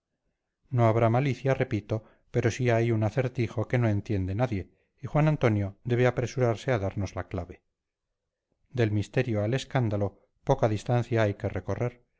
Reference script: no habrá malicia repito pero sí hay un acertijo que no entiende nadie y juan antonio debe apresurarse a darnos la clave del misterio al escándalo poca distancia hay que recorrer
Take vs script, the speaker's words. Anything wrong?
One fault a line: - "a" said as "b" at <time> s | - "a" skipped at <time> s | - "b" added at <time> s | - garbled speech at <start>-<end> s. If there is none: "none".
none